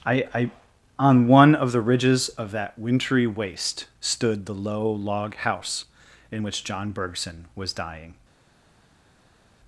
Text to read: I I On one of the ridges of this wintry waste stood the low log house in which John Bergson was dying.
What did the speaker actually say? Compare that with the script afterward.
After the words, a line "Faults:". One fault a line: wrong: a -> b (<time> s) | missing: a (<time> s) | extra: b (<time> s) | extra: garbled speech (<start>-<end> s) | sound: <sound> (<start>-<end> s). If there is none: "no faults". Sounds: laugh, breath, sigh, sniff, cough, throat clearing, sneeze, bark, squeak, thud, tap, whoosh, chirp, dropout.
I I On one of the ridges of that wintry waste stood the low log house in which John Bergson was dying.
Faults:
wrong: this -> that (2.5 s)